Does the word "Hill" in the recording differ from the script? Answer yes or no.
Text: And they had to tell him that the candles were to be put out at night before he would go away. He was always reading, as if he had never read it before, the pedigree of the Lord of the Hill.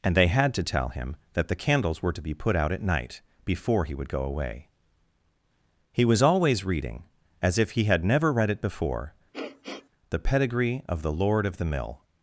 yes